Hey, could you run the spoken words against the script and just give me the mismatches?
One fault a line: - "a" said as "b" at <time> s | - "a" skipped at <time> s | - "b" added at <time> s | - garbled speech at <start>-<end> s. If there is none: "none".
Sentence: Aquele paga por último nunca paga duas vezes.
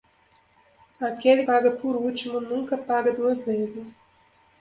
none